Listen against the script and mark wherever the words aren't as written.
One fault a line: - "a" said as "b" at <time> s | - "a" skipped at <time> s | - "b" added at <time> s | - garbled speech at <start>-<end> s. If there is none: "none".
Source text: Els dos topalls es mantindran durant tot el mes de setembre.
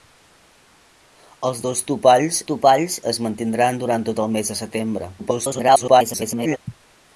- "topalls" added at 2.5 s
- garbled speech at 5.2-6.6 s